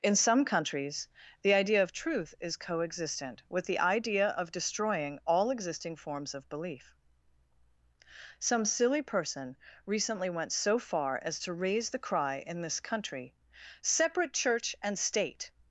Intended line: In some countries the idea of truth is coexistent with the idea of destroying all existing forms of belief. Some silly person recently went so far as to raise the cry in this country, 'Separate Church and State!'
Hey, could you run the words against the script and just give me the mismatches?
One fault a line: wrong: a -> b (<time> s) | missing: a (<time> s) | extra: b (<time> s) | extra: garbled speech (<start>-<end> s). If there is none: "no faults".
no faults